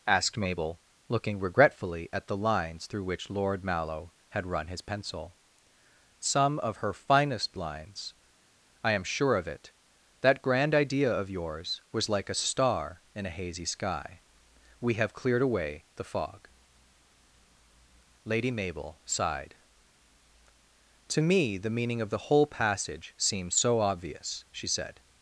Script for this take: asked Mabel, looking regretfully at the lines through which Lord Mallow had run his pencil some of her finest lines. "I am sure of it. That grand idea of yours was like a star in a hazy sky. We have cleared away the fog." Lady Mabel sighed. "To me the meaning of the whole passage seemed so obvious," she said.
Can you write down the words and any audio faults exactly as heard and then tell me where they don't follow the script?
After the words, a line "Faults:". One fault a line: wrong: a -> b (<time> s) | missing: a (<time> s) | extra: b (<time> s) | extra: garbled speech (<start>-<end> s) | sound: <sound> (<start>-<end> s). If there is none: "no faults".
asked Mabel, looking regretfully at the lines through which Lord Mallow had run his pencil some of her finest lines. "I am sure of it. That grand idea of yours was like a star in a hazy sky. We have cleared away the fog." Lady Mabel sighed. "To me the meaning of the whole passage seems so obvious," she said.
Faults:
wrong: seemed -> seems (23.2 s)